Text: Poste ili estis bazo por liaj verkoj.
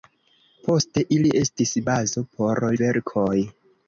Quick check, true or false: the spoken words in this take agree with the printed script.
false